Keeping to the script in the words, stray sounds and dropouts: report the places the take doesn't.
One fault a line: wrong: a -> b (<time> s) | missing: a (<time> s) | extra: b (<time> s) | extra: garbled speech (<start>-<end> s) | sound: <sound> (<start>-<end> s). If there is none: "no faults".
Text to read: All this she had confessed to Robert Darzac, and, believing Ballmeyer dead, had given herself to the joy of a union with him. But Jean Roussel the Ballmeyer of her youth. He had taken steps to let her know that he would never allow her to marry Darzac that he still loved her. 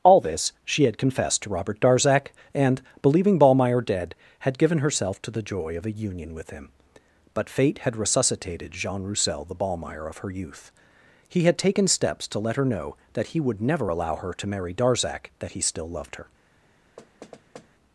extra: fate had resuscitated (7.5 s)
sound: thud (17.0-17.7 s)